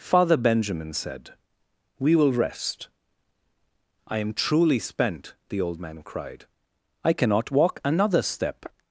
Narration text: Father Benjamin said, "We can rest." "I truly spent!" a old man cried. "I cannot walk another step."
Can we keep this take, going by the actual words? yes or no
no